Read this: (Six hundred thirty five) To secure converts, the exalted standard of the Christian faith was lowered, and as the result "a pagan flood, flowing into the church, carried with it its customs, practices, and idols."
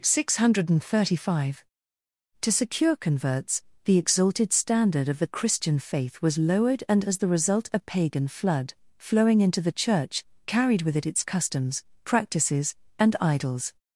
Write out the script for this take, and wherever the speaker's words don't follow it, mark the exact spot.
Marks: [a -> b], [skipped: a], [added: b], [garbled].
(Six hundred thirty five) To secure converts, the exalted standard of the Christian faith was lowered, and as the result "a pagan flood, flowing into the church, carried with it its customs, practices, and idols."